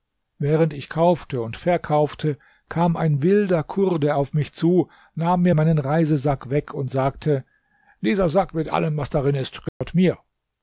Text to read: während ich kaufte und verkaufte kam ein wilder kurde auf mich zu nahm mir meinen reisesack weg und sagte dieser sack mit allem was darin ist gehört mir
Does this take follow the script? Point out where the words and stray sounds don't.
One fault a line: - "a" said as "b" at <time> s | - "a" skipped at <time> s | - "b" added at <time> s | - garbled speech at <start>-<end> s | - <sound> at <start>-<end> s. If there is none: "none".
- dropout at 9.7-9.8 s